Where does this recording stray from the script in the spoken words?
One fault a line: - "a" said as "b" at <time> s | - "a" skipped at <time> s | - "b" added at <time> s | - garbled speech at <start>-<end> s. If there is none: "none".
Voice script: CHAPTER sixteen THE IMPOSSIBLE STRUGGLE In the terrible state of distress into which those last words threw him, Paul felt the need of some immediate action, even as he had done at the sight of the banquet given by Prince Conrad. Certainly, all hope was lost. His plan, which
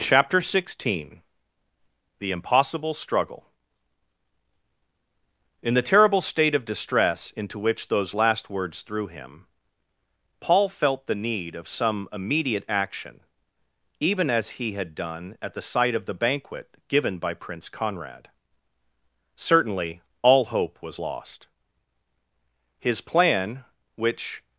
none